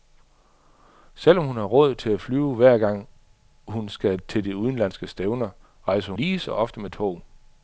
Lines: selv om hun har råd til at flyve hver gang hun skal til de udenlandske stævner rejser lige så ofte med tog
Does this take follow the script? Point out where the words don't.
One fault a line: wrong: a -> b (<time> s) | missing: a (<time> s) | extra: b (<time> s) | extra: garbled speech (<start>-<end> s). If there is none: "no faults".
no faults